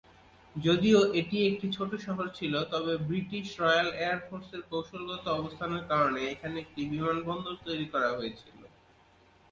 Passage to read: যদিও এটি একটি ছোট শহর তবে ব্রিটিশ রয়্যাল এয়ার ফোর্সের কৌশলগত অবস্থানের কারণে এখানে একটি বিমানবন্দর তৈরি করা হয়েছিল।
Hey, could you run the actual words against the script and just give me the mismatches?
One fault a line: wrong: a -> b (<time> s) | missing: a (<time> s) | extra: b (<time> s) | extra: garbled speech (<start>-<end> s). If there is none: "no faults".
extra: ছিল (2.4 s)